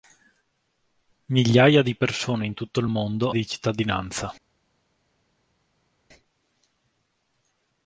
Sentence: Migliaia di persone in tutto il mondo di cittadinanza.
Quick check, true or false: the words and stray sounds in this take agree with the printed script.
true